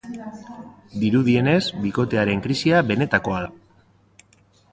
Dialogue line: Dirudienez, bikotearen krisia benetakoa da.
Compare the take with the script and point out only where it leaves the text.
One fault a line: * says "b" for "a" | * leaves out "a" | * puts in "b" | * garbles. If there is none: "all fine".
all fine